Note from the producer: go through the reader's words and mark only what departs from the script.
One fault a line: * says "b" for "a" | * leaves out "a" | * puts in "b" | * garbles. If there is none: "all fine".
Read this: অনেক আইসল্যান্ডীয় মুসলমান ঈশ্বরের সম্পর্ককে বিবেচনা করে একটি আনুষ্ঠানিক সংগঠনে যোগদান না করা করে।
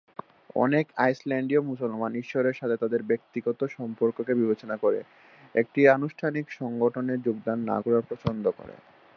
* puts in "সাথে তাদের ব্যক্তিগত"
* puts in "পছন্দ"